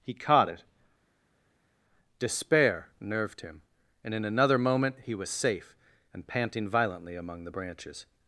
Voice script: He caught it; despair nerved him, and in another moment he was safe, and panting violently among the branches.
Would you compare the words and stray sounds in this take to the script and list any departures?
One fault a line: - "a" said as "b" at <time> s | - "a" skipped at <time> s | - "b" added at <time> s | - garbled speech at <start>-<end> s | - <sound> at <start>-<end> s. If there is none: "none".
none